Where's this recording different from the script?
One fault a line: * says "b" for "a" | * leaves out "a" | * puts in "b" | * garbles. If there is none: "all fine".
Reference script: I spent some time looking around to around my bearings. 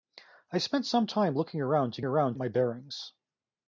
all fine